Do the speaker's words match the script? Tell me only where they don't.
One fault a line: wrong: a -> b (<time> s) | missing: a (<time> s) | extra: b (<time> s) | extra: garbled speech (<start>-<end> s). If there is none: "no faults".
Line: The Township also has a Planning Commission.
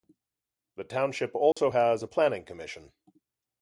no faults